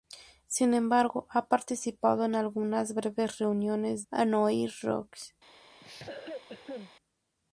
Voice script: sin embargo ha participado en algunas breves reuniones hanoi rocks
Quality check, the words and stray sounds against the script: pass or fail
fail